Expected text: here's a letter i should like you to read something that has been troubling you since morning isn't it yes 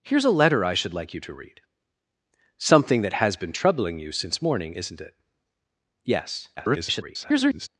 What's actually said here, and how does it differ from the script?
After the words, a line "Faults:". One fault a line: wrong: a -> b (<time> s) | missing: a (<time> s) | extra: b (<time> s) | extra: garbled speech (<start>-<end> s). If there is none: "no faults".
here's a letter i should like you to read something that has been troubling you since morning isn't it yes [garbled]
Faults:
extra: garbled speech (6.6-7.7 s)